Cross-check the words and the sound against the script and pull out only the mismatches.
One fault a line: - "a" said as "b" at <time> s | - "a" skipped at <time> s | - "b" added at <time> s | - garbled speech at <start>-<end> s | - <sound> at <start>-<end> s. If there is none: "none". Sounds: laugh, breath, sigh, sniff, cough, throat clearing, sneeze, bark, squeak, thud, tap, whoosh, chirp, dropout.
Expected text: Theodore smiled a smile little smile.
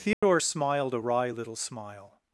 - dropout at 0.1-0.2 s
- "smile" said as "wry" at 1.0 s